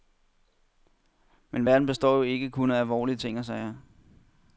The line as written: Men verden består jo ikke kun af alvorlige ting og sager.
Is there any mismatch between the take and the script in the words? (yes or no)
no